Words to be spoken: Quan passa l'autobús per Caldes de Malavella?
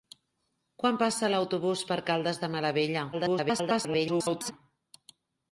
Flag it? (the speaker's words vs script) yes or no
yes